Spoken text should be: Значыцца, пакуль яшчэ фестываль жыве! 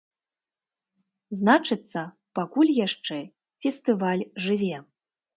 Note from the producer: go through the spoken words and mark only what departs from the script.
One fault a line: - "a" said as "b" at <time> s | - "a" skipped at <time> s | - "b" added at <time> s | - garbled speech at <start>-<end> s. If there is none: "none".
none